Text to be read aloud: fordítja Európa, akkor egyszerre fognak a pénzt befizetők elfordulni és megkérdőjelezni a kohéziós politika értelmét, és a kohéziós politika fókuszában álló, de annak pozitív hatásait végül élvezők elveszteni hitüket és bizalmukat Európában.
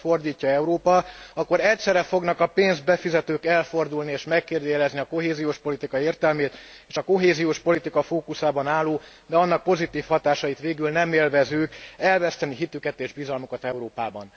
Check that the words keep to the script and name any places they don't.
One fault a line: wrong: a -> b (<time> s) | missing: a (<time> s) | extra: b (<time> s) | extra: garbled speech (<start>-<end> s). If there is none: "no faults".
extra: nem (10.9 s)